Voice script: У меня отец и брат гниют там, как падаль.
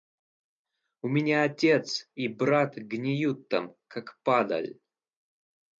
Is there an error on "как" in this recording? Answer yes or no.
no